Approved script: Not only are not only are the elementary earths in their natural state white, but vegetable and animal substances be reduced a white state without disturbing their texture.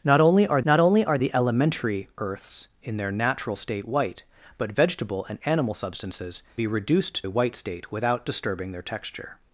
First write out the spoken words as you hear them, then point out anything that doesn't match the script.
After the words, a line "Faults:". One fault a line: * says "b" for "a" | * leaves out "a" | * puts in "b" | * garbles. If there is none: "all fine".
Not only are not only are the elementary earths in their natural state white, but vegetable and animal substances be reduced a white state without disturbing their texture.
Faults:
all fine